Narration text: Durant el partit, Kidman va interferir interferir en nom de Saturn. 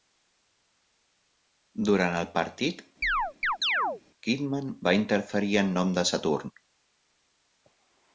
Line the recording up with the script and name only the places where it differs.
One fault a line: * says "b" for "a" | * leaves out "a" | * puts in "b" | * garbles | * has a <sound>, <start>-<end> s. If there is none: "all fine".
* has a chirp, 3.0-4.0 s
* leaves out "interferir"